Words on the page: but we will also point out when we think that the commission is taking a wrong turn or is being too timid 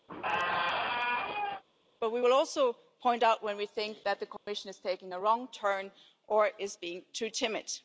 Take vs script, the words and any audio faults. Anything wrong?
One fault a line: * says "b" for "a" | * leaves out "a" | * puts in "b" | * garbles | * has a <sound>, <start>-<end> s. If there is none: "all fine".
* has a squeak, 0.1-1.6 s
* has a dropout, 4.4-4.5 s